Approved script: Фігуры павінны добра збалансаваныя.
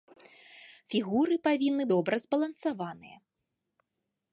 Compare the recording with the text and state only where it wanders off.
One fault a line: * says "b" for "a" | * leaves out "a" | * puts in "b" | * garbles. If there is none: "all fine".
all fine